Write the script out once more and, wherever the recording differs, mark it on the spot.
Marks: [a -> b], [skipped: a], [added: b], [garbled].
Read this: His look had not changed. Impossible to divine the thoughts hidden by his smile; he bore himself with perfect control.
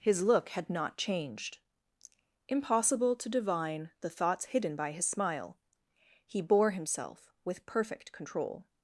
His look had not changed. Impossible to divine the thoughts hidden by his smile; he bore himself with perfect control.